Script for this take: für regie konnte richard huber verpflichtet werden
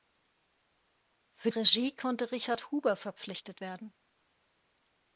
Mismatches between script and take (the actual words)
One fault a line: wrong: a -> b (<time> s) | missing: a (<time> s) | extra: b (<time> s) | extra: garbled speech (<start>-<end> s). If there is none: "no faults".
no faults